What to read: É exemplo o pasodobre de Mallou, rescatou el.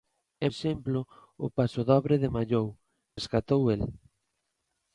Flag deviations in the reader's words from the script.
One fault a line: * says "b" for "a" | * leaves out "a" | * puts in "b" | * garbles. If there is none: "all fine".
all fine